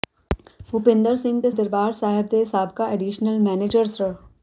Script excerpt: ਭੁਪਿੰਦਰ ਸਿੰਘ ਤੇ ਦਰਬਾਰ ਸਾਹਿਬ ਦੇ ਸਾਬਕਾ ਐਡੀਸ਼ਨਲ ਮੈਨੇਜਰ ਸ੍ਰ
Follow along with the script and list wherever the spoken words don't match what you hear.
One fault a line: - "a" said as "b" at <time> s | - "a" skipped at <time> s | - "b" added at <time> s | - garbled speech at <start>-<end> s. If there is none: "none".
none